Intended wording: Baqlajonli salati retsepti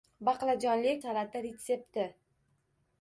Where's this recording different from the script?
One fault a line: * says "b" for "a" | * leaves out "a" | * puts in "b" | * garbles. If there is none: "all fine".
all fine